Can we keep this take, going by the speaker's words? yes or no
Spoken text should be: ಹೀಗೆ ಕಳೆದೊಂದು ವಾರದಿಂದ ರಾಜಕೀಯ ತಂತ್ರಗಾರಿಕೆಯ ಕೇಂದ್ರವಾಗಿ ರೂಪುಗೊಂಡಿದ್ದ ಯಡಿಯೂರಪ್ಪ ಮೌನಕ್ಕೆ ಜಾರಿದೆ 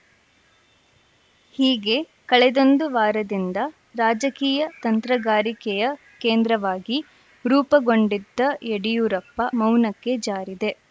yes